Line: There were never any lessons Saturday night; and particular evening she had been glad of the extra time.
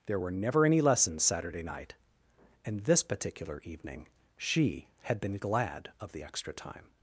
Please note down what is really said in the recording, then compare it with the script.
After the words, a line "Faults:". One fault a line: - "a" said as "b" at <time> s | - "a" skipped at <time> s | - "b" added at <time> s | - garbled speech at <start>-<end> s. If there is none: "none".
There were never any lessons Saturday night; and this particular evening she had been glad of the extra time.
Faults:
- "this" added at 2.9 s